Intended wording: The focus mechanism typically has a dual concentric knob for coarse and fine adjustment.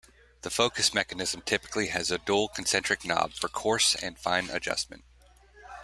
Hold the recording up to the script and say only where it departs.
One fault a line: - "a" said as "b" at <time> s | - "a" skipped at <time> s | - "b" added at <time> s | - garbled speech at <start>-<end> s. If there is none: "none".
none